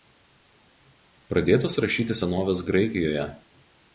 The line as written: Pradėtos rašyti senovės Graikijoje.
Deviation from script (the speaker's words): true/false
false